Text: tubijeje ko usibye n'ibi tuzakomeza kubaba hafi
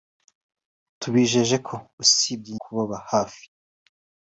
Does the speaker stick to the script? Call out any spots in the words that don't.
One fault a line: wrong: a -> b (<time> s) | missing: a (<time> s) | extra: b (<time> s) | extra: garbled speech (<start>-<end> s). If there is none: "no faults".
missing: n'ibi tuzakomeza (2.6 s)